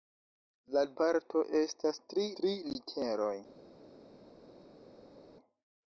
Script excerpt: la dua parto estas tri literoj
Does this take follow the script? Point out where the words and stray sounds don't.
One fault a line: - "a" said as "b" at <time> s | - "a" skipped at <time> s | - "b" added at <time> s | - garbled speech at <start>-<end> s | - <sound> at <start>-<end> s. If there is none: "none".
- "dua" skipped at 0.8 s
- "tri" added at 2.4 s